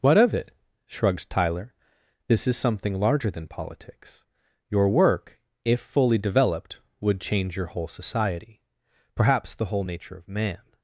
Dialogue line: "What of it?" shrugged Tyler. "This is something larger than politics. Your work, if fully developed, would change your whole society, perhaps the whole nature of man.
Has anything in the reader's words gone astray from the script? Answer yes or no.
no